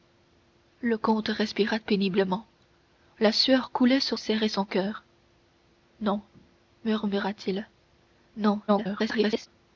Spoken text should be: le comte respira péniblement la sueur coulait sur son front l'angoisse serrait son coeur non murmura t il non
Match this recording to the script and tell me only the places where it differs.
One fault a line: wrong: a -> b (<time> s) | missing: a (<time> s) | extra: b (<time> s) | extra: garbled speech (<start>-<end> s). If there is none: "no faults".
missing: son front l'angoisse (4.2 s)
extra: garbled speech (8.7-9.5 s)